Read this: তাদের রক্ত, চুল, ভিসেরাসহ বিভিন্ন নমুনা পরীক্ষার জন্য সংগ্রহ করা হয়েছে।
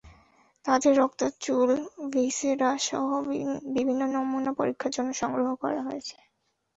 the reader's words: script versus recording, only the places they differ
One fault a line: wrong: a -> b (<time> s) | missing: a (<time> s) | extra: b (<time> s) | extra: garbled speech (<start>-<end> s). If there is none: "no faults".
no faults